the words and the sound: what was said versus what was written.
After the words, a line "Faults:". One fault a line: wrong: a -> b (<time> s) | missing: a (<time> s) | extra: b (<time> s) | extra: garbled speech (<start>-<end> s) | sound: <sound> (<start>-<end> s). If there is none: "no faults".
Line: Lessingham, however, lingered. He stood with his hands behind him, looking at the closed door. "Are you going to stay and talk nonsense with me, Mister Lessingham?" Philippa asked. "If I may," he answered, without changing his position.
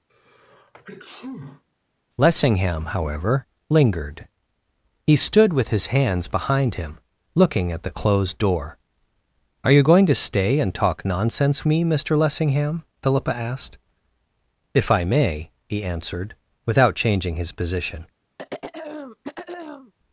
Lessingham, however, lingered. He stood with his hands behind him, looking at the closed door. "Are you going to stay and talk nonsense me, Mister Lessingham?" Philippa asked. "If I may," he answered, without changing his position.
Faults:
sound: sneeze (0.1-1.6 s)
missing: with (11.6 s)
sound: throat clearing (18.4-19.9 s)